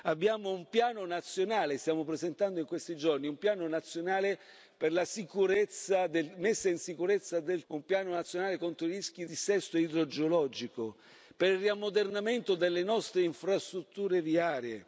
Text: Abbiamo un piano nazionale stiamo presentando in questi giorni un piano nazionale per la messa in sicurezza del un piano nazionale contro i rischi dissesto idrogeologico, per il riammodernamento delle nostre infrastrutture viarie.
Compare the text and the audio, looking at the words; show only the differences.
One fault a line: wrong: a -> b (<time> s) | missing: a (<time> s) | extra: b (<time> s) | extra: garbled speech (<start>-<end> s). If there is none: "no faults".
no faults